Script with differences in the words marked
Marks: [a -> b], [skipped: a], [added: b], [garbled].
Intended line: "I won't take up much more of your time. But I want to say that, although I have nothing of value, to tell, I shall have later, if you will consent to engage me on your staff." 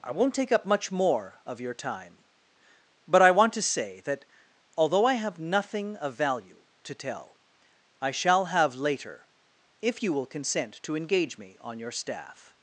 "I won't take up much more of your time. But I want to say that, although I have nothing of value, to tell, I shall have later, if you will consent to engage me on your staff."